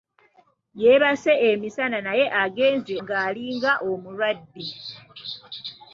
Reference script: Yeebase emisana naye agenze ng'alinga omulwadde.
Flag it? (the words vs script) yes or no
no